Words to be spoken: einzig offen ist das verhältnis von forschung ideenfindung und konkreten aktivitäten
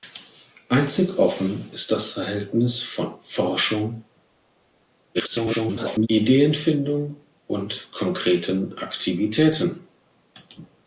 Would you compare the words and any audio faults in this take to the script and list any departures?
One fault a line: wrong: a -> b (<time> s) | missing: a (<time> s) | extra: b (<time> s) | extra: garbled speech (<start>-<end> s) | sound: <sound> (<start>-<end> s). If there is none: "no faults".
extra: garbled speech (5.1-6.1 s)